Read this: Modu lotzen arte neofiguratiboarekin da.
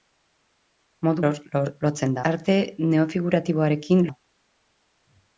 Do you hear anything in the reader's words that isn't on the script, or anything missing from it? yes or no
no